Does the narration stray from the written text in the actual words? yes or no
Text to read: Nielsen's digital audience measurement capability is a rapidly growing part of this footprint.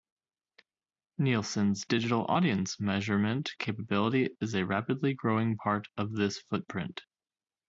no